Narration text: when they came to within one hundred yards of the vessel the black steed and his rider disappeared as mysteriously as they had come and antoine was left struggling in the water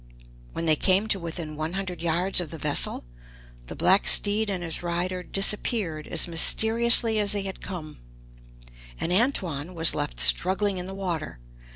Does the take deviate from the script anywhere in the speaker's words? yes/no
no